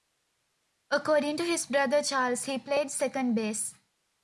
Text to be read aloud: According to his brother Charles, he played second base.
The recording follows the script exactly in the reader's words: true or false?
true